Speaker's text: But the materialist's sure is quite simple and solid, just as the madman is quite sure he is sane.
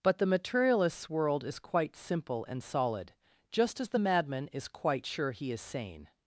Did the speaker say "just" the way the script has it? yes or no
yes